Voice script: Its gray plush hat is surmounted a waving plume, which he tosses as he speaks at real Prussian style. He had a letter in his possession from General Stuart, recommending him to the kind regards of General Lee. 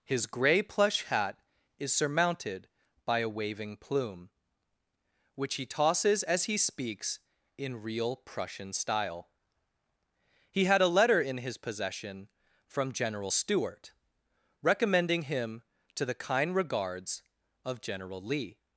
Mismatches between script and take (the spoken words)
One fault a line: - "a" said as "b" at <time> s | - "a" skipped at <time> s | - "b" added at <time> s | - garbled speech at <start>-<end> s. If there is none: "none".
- "Its" said as "His" at 0.0 s
- "by" added at 3.0 s
- "at" said as "in" at 7.6 s